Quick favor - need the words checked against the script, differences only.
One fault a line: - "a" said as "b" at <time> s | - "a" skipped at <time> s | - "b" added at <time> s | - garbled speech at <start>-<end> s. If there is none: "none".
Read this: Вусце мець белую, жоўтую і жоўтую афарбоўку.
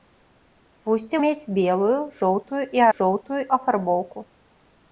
none